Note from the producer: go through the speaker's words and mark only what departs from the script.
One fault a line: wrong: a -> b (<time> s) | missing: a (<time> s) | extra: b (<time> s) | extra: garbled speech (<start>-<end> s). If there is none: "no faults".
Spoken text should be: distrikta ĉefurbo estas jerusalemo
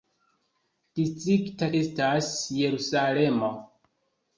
missing: ĉefurbo (1.7 s)